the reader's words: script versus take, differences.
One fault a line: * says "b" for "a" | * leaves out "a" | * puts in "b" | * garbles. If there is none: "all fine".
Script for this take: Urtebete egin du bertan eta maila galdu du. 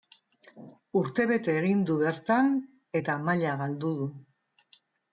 all fine